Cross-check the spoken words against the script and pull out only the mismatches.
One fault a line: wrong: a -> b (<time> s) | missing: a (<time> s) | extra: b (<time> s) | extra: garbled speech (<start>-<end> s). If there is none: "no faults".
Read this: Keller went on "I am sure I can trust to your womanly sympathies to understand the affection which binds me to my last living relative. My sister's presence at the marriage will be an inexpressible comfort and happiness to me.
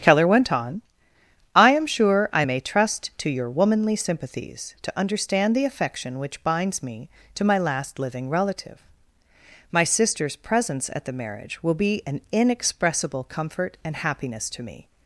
wrong: can -> may (2.4 s)